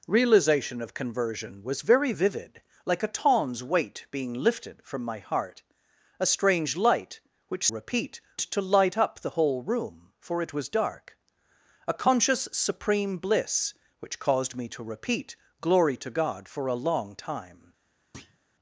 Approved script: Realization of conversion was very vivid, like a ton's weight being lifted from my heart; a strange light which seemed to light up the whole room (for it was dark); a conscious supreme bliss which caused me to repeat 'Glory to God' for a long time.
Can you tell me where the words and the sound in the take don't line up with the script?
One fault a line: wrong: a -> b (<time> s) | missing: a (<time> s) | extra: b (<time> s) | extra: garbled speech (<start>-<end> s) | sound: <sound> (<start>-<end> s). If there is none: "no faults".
wrong: seemed -> repeat (7.7 s)
sound: thud (18.1-18.4 s)